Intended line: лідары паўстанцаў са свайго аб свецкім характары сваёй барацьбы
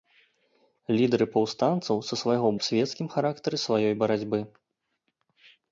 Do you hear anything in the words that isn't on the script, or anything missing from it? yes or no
no